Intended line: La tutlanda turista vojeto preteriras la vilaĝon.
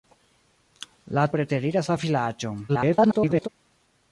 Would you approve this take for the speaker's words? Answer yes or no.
no